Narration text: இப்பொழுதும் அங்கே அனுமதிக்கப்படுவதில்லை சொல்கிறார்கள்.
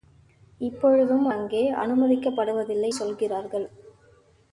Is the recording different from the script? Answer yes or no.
no